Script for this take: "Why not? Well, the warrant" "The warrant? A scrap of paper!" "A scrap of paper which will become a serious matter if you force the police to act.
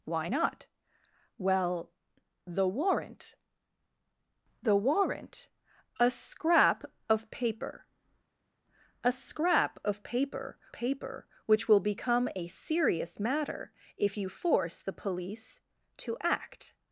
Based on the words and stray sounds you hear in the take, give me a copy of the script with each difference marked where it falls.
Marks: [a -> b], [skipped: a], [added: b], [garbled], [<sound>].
"Why not? Well, the warrant" "The warrant? A scrap of paper!" "A scrap of paper [added: paper] which will become a serious matter if you force the police to act.